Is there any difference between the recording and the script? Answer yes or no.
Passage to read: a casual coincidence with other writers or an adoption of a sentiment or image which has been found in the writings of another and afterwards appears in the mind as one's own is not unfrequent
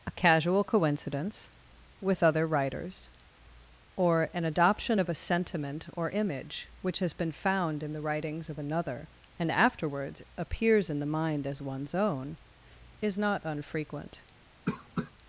no